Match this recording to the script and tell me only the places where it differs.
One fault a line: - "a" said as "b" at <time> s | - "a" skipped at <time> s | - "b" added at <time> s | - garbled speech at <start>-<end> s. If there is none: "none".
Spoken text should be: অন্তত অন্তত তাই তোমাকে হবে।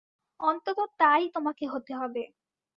- "অন্তত" skipped at 0.8 s
- "হতে" added at 1.7 s